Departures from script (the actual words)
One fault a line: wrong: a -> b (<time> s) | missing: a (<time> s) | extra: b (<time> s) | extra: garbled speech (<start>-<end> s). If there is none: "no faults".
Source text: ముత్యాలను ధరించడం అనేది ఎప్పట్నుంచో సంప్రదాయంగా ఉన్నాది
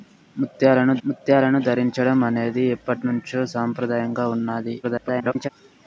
extra: ముత్యాలను (1.0 s)
extra: garbled speech (4.8-5.5 s)